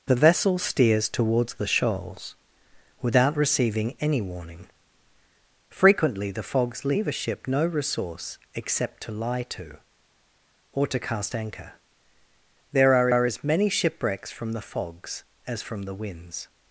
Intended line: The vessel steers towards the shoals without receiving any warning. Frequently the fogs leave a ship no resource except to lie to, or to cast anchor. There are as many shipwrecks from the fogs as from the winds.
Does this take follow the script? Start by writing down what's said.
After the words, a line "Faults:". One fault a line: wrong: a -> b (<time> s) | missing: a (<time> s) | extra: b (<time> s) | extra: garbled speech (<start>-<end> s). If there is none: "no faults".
The vessel steers towards the shoals without receiving any warning. Frequently the fogs leave a ship no resource except to lie to, or to cast anchor. There are are as many shipwrecks from the fogs as from the winds.
Faults:
extra: are (13.1 s)